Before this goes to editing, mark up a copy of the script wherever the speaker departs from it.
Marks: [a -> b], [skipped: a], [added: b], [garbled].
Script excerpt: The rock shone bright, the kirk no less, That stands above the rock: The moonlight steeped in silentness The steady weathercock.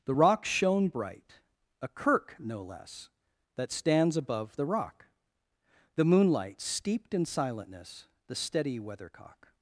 The rock shone bright, [the -> a] kirk no less, That stands above the rock: The moonlight steeped in silentness The steady weathercock.